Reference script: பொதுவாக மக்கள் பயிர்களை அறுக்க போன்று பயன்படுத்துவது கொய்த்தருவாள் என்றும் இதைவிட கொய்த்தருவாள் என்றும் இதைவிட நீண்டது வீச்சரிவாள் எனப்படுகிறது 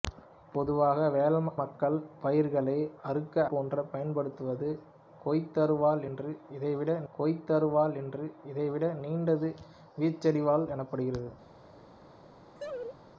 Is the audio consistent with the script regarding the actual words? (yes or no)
yes